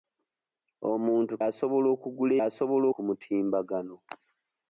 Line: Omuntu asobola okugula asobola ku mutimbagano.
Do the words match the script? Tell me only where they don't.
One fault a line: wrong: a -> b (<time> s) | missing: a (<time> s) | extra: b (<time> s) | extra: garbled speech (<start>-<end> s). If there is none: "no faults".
no faults